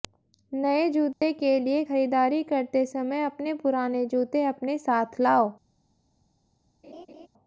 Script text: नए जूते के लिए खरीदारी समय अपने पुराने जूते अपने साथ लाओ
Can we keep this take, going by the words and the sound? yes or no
no